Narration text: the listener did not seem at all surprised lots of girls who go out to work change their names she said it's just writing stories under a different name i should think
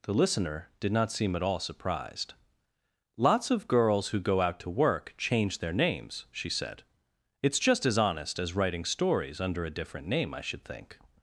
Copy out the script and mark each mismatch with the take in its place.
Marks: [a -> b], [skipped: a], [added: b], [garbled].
the listener did not seem at all surprised lots of girls who go out to work change their names she said it's just [added: as honest as] writing stories under a different name i should think